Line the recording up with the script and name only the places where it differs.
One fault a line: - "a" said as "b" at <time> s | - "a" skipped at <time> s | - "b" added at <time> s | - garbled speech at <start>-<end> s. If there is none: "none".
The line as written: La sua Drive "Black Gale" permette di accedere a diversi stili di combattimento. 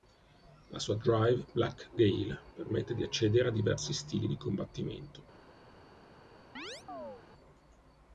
none